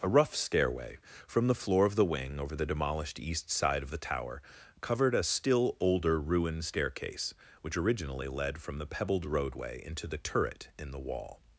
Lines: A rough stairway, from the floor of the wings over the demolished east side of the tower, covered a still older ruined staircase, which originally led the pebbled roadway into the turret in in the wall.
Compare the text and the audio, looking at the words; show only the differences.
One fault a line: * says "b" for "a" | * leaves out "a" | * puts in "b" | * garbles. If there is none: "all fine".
* says "wing" for "wings"
* puts in "from"
* leaves out "in"